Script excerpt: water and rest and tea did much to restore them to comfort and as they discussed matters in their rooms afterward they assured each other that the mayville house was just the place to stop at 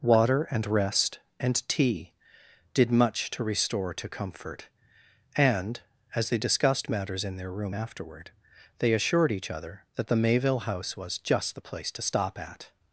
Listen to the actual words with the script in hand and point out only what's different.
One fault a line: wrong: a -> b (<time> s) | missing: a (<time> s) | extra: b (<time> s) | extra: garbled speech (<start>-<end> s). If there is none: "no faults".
missing: them (3.9 s)
wrong: rooms -> room (7.5 s)